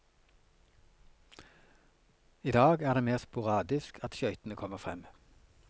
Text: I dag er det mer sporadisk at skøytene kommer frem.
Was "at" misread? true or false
false